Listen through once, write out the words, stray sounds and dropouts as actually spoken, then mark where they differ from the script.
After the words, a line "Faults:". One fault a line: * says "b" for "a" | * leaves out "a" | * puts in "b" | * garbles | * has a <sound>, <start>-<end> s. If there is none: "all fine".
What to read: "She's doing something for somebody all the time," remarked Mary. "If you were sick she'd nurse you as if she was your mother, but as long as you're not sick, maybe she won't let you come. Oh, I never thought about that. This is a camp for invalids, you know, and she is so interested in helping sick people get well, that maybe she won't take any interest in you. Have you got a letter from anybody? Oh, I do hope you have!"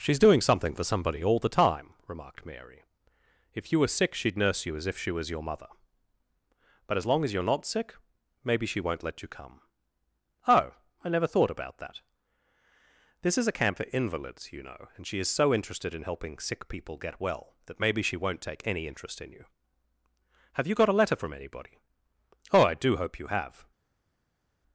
"She's doing something for somebody all the time," remarked Mary. "If you were sick she'd nurse you as if she was your mother, but as long as you're not sick, maybe she won't let you come. Oh, I never thought about that. This is a camp for invalids, you know, and she is so interested in helping sick people get well, that maybe she won't take any interest in you. Have you got a letter from anybody? Oh, I do hope you have!"
Faults:
all fine